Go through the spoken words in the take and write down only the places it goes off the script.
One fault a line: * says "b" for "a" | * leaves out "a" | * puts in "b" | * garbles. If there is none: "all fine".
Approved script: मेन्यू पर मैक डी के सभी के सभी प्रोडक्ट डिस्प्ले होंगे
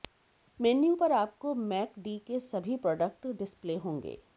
* puts in "आपको"
* leaves out "के सभी"